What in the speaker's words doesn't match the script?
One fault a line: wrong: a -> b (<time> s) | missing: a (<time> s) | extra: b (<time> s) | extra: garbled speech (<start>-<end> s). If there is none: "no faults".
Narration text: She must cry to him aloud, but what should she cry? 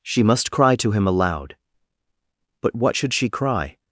no faults